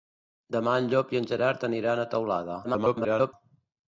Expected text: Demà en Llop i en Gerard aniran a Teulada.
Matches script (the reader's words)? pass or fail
fail